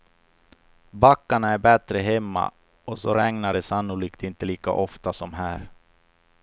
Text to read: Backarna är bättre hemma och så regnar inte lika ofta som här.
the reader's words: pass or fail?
fail